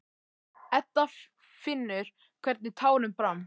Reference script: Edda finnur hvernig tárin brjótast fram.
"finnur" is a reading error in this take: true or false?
false